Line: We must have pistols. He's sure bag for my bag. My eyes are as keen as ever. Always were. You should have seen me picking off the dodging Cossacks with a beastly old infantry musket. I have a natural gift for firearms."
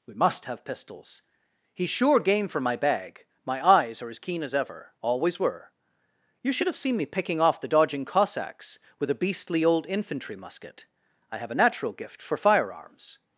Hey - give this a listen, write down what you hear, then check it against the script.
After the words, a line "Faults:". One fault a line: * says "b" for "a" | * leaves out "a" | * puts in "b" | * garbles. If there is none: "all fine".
We must have pistols. He's sure game for my bag. My eyes are as keen as ever. Always were. You should have seen me picking off the dodging Cossacks with a beastly old infantry musket. I have a natural gift for firearms."
Faults:
* says "game" for "bag"